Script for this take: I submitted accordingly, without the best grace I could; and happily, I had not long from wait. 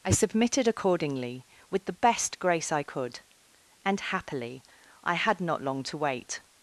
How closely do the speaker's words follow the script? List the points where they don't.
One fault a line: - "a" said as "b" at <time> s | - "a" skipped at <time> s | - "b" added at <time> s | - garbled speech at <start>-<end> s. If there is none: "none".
- "without" said as "with" at 1.7 s
- "from" said as "to" at 5.8 s